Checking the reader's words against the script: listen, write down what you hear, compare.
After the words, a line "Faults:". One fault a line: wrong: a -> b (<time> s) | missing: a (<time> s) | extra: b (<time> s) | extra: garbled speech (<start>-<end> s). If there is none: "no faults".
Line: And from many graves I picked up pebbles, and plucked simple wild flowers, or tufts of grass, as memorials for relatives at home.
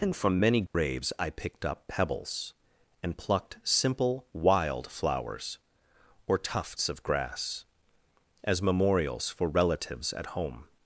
And from many graves I picked up pebbles, and plucked simple wild flowers, or tufts of grass, as memorials for relatives at home.
Faults:
no faults